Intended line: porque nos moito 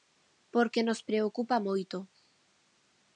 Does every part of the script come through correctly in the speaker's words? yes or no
no